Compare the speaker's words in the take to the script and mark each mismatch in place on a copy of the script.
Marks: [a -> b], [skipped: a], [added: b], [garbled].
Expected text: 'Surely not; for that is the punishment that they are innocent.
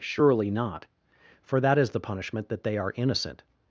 'Surely not; for that is the punishment that they are innocent.